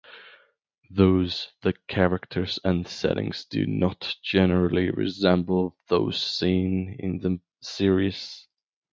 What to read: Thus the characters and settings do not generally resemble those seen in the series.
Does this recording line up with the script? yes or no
yes